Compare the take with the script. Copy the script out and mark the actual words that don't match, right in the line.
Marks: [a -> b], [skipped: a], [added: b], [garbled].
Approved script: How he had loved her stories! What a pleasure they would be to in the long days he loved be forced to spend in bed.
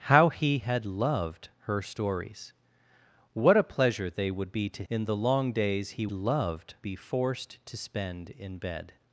How he had loved her stories! What a pleasure they would be to in the long days he loved be forced to spend in bed.